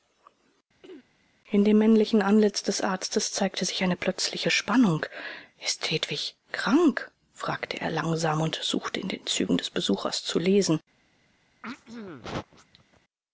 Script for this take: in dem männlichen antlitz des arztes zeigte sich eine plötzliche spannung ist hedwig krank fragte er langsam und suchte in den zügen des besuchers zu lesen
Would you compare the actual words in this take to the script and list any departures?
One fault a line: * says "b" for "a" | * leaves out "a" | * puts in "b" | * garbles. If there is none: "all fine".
all fine